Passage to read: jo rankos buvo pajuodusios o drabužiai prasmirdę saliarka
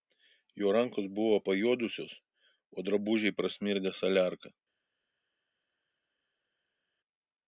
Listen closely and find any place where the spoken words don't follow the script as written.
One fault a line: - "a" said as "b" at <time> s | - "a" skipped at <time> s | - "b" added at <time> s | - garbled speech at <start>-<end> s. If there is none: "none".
none